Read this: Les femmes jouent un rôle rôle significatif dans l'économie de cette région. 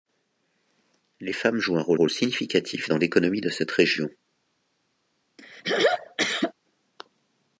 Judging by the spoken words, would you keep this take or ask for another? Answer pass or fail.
pass